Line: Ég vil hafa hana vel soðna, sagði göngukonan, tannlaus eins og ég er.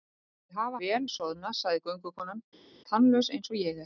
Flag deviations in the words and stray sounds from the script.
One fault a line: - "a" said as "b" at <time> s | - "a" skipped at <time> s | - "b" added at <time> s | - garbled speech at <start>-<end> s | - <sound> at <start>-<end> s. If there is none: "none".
- "hana" skipped at 0.8 s